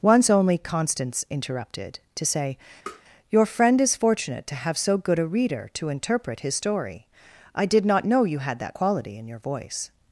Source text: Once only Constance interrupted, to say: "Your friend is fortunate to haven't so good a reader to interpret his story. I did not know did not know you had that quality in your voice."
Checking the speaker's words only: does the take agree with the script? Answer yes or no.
no